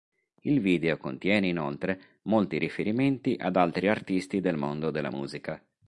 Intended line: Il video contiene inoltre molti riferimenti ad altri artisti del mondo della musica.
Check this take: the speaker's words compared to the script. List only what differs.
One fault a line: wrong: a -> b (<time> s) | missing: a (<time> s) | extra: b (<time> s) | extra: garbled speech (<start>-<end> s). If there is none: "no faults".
no faults